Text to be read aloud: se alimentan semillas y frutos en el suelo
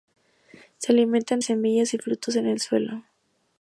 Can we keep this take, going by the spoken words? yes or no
yes